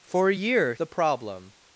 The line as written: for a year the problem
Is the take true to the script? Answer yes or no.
yes